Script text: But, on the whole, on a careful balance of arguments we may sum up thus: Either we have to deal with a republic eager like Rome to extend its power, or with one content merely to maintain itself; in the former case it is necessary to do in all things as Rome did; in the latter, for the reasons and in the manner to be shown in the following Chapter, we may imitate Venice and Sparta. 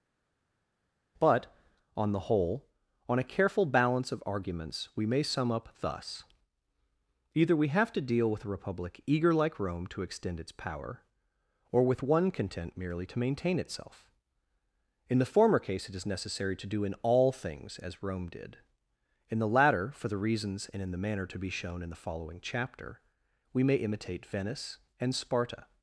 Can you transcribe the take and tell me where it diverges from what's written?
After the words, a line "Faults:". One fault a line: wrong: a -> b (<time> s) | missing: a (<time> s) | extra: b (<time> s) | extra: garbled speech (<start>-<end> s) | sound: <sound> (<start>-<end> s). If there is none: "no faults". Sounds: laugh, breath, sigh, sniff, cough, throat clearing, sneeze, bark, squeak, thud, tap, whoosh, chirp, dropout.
But, on the whole, on a careful balance of arguments we may sum up thus: Either we have to deal with a republic eager like Rome to extend its power, or with one content merely to maintain itself; in the former case it is necessary to do in all things as Rome did; in the latter, for the reasons and in the manner to be shown in the following Chapter, we may imitate Venice and Sparta.
Faults:
no faults